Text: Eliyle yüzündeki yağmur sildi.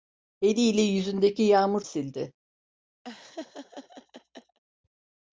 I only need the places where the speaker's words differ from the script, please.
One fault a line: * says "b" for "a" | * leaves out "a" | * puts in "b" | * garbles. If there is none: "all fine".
all fine